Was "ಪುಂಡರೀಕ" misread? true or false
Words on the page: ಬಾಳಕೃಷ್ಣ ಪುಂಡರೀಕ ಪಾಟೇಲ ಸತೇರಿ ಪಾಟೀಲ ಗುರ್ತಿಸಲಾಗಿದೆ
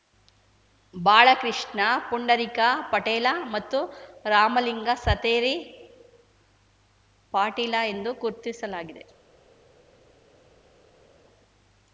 false